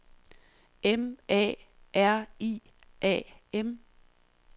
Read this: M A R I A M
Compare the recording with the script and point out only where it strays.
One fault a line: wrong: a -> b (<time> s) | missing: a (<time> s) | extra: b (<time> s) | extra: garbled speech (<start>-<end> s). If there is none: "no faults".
no faults